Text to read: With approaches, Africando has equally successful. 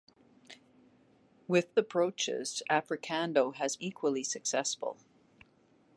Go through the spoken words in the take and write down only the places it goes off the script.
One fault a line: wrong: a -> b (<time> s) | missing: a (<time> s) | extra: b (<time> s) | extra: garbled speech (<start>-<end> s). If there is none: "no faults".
no faults